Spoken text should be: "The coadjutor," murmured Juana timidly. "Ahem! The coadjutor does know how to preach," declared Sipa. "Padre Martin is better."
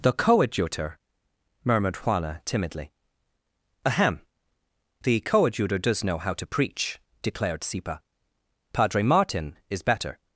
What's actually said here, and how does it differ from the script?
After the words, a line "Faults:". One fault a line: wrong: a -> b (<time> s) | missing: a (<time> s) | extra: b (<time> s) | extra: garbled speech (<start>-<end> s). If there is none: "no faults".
"The coadjutor," murmured Juana timidly. "Ahem! The coadjutor does know how to preach," declared Sipa. "Padre Martin is better."
Faults:
no faults